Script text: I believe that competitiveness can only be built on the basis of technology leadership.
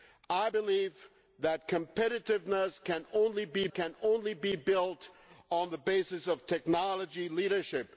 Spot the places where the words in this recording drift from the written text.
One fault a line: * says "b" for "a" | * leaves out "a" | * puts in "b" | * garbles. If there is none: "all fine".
* puts in "can only be"